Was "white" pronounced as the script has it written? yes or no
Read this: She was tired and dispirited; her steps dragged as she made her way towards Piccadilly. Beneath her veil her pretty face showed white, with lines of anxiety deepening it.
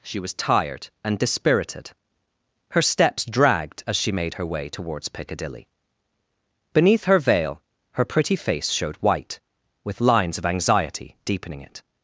yes